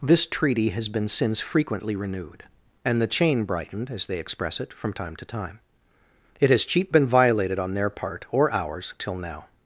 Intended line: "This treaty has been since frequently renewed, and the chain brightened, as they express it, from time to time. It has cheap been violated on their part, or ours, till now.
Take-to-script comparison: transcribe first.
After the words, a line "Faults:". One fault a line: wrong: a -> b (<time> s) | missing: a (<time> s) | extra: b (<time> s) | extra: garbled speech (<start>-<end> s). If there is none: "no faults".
"This treaty has been since frequently renewed, and the chain brightened, as they express it, from time to time. It has cheap been violated on their part, or ours, till now.
Faults:
no faults